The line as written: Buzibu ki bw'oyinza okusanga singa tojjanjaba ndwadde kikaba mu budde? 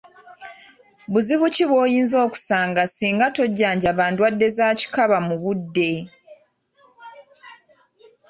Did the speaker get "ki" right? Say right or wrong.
right